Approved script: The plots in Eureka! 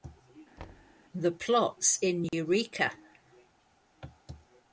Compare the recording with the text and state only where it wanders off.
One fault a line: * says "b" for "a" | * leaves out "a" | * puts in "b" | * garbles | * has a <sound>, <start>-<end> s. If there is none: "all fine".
* has a thud, 0.6-1.0 s
* has a dropout, 2.3-2.3 s